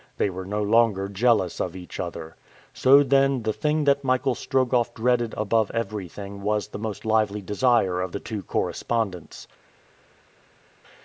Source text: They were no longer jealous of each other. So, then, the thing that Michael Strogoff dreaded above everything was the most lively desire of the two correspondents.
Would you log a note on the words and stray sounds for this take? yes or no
no